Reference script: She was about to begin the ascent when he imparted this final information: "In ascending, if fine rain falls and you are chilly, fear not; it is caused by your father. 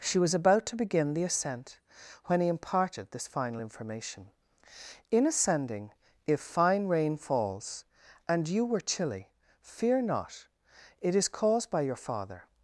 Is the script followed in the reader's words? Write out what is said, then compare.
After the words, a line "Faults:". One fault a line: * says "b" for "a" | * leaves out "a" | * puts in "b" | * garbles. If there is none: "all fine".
She was about to begin the ascent when he imparted this final information: "In ascending, if fine rain falls and you were chilly, fear not; it is caused by your father.
Faults:
* says "were" for "are"